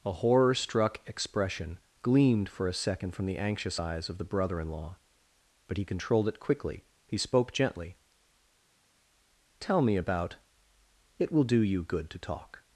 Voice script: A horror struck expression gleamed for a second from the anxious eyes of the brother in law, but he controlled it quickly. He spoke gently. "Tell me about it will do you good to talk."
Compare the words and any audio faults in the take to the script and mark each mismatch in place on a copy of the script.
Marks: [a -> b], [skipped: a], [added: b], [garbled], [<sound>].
A horror struck expression gleamed for a second from the anxious eyes of the brother in law, but he controlled it quickly. He spoke gently. "Tell me about it will do you good to talk."